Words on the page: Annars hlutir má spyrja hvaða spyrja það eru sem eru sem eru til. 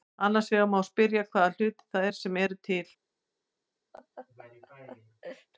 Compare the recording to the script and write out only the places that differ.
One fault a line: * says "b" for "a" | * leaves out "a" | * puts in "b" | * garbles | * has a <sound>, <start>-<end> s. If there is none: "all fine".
* says "vegar" for "hlutir"
* says "hlutir" for "spyrja"
* leaves out "sem eru"
* has a laugh, 3.9-5.5 s